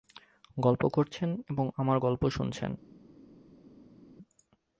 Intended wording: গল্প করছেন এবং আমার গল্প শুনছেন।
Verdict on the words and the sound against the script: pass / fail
pass